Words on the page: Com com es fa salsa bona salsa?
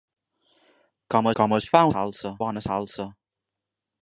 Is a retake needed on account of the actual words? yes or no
no